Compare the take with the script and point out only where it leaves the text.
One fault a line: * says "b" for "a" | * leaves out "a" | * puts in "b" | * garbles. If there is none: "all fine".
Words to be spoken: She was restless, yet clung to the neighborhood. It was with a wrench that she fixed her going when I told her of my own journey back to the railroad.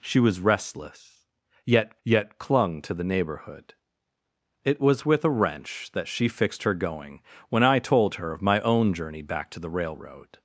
* puts in "yet"